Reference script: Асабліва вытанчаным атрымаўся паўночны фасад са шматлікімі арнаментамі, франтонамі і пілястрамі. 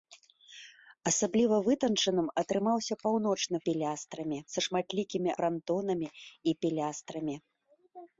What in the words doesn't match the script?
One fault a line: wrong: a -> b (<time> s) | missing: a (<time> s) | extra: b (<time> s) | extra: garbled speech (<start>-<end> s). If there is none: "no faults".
wrong: фасад -> пілястрамі (3.7 s)
missing: арнаментамі (5.3 s)